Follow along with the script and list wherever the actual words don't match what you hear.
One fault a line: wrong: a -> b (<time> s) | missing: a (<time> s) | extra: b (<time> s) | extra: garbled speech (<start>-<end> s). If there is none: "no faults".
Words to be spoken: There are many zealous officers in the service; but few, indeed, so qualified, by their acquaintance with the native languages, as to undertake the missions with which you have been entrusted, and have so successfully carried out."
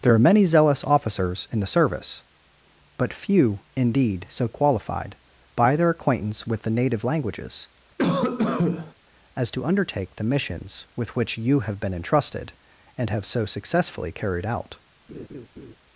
no faults